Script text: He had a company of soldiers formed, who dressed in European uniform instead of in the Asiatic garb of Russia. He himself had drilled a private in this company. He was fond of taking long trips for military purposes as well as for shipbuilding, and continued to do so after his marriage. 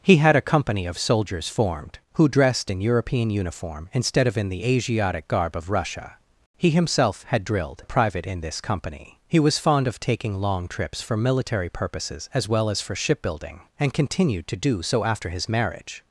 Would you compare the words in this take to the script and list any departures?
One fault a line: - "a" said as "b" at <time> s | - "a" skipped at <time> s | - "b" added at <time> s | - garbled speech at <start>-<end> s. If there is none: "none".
none